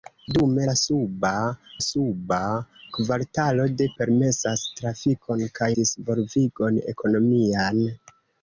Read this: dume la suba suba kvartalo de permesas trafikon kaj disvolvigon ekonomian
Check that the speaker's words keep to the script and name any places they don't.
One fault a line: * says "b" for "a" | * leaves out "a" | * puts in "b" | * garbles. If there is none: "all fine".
all fine